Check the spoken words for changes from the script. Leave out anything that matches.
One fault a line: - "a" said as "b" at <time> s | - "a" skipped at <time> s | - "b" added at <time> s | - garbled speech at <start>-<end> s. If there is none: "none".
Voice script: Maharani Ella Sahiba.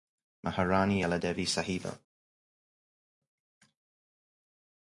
- "Devi" added at 1.2 s